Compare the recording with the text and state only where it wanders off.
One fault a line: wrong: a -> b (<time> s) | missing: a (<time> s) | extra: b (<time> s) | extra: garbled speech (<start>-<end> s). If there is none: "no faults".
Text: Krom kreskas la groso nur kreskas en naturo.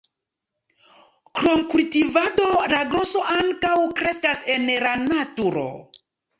wrong: kreskas -> kultivado (1.7 s)
wrong: nur -> ankaŭ (3.4 s)
extra: la (4.9 s)